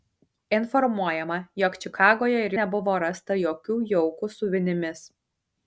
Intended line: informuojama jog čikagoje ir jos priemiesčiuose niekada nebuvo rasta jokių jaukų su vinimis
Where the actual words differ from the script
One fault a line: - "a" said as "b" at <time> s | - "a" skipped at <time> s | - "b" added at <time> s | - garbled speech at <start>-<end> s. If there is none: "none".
- "jos priemiesčiuose niekada" skipped at 2.5 s